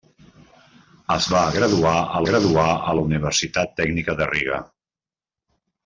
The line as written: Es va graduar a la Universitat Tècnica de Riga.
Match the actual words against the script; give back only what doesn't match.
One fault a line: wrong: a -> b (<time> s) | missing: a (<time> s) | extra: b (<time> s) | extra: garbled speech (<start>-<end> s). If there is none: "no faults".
extra: graduar a (2.3 s)